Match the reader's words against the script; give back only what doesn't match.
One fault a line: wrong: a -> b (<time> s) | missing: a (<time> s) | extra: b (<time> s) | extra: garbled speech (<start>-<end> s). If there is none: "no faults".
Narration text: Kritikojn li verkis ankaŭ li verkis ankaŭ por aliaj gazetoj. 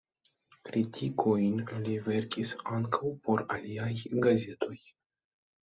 missing: li verkis ankaŭ (3.1 s)